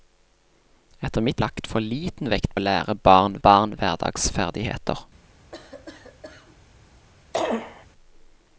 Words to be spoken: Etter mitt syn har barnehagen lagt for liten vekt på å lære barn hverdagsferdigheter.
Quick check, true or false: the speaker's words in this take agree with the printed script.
false